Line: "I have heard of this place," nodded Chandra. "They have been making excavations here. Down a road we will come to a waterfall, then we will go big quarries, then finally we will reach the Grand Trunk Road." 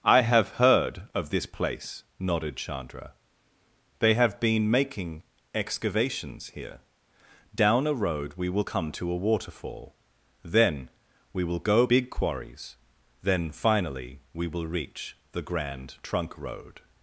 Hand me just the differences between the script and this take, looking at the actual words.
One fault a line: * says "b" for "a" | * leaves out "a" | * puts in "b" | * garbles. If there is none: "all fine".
all fine